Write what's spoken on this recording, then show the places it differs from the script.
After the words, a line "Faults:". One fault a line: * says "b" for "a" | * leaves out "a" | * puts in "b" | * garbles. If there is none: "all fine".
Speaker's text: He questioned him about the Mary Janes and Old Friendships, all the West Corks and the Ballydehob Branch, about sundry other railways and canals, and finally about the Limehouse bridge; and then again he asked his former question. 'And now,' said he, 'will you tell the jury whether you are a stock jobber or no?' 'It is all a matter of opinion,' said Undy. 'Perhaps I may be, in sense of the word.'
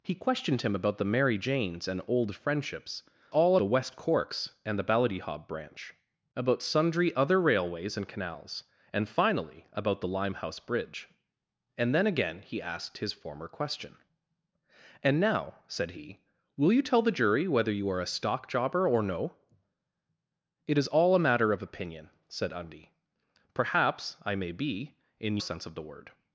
He questioned him about the Mary Janes and Old Friendships, all the West Corks and the Ballydehob Branch, about sundry other railways and canals, and finally about the Limehouse bridge; and then again he asked his former question. 'And now,' said he, 'will you tell the jury whether you are a stock jobber or no?' 'It is all a matter of opinion,' said Undy. 'Perhaps I may be, in sense of the word.'
Faults:
all fine